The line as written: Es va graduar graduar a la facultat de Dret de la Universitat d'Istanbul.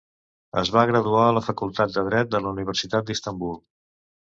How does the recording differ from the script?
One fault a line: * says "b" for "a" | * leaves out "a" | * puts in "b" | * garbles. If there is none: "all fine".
* leaves out "graduar"